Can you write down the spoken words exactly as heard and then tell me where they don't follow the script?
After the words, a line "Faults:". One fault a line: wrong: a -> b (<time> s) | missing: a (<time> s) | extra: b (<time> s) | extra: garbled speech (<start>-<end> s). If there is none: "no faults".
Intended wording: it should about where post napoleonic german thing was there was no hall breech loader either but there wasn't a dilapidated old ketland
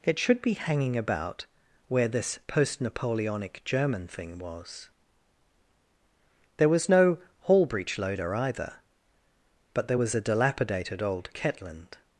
it should be hanging about where this post napoleonic german thing was there was no hall breech loader either but there was a dilapidated old ketland
Faults:
extra: be hanging (0.4 s)
extra: this (2.1 s)
wrong: wasn't -> was (9.9 s)